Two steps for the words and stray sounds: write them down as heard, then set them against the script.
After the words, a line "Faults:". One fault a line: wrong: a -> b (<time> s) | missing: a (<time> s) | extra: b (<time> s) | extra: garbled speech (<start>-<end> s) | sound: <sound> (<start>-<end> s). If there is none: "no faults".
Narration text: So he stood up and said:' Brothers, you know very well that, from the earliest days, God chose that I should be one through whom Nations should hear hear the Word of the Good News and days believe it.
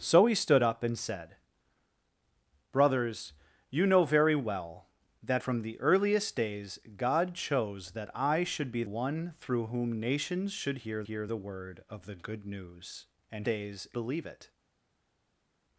So he stood up and said:' Brothers, you know very well that, from the earliest days, God chose that I should be one through whom Nations should hear hear the Word of the Good News and days believe it.
Faults:
no faults